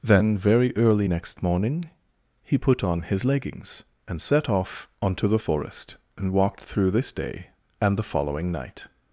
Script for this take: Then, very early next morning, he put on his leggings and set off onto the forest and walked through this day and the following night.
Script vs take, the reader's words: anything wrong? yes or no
no